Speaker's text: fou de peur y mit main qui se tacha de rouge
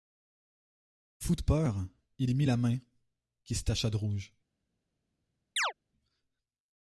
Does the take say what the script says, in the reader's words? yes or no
no